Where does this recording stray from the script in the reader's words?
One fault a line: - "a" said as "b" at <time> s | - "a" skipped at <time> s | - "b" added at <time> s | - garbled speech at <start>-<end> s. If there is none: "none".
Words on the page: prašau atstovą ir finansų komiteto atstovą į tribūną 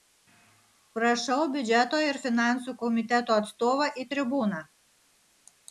- "atstovą" said as "biudžeto" at 1.6 s